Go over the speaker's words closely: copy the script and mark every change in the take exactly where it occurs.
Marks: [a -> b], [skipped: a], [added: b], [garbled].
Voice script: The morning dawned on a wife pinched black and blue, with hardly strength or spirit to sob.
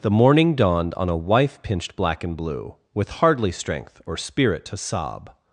The morning dawned on a wife pinched black and blue, with hardly strength or spirit to sob.